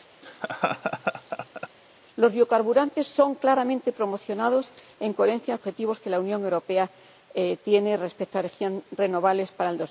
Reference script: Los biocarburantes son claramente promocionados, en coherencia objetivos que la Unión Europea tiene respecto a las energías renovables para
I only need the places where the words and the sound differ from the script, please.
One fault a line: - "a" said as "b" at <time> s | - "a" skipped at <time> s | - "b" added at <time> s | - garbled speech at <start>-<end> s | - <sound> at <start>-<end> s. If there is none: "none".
- laugh at 0.2-1.7 s